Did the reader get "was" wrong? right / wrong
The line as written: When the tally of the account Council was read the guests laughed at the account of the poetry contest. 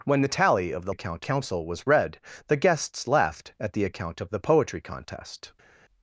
right